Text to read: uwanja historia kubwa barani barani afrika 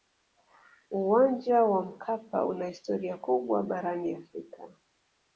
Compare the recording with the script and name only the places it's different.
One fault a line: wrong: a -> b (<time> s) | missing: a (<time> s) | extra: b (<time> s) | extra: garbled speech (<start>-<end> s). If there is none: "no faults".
extra: wa mkapa una (1.6 s)
missing: barani (4.1 s)